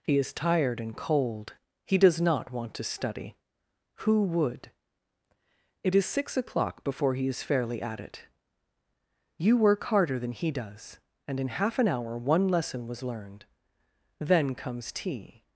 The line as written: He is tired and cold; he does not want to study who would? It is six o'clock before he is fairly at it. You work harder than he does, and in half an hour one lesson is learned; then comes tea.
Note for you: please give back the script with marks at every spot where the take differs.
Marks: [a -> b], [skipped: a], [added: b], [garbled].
He is tired and cold; he does not want to study who would? It is six o'clock before he is fairly at it. You work harder than he does, and in half an hour one lesson [is -> was] learned; then comes tea.